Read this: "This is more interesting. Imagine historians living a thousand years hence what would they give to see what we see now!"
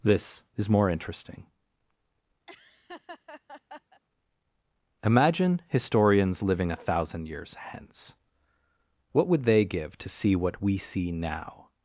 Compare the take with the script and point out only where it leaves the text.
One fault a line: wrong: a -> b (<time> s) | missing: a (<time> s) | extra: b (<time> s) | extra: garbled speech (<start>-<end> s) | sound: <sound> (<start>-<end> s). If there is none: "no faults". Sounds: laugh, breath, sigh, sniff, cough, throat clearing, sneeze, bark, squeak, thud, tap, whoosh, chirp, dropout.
sound: laugh (2.5-4.0 s)